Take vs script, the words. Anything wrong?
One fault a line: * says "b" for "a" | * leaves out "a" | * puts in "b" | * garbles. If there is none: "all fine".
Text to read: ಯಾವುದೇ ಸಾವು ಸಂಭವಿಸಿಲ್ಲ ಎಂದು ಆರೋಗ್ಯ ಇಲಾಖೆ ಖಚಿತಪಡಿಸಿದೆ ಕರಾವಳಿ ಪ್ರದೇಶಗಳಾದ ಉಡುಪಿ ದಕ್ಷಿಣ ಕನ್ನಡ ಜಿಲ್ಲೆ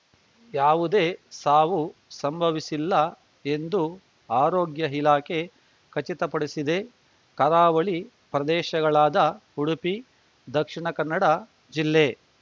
all fine